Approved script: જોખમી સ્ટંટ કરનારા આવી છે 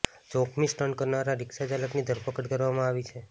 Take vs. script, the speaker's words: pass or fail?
fail